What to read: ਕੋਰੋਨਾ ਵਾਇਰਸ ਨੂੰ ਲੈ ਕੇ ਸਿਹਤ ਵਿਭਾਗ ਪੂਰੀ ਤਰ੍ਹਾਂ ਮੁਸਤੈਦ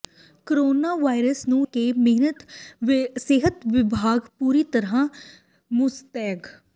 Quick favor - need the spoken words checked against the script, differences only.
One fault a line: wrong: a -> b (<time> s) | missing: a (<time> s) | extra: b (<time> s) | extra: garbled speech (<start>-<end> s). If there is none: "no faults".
missing: ਲੈ (1.7 s)